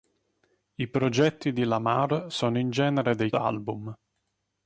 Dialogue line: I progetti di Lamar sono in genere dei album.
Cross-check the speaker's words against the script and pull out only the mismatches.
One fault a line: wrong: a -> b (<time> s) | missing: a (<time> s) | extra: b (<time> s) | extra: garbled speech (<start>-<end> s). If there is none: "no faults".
no faults